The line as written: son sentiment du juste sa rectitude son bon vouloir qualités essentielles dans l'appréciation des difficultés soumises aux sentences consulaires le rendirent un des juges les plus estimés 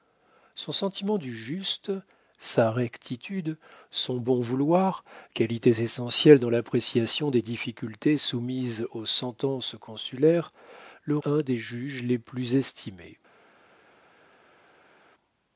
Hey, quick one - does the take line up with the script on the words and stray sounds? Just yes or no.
no